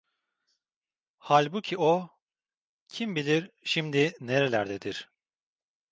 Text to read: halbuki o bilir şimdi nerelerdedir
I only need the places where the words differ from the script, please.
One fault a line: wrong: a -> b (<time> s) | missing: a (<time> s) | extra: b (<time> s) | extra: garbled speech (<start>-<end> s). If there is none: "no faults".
extra: kim (2.9 s)